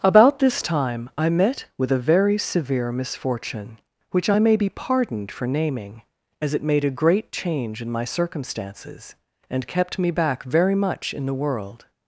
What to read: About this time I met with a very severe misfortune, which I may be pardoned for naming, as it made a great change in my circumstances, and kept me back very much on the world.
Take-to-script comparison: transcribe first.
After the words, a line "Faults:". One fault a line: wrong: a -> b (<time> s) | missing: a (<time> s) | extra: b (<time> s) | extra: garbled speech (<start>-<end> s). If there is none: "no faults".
About this time I met with a very severe misfortune, which I may be pardoned for naming, as it made a great change in my circumstances, and kept me back very much in the world.
Faults:
wrong: on -> in (11.1 s)